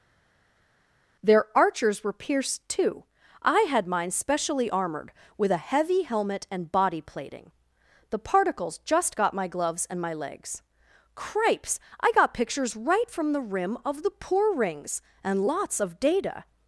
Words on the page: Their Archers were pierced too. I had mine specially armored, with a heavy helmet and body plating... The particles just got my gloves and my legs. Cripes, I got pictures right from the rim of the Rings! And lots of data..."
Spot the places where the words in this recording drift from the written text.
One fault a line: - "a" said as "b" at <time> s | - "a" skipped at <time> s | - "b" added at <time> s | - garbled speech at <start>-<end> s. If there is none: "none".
- "poor" added at 14.1 s